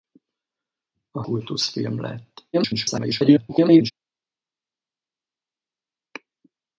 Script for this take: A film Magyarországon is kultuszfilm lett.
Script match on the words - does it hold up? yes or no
no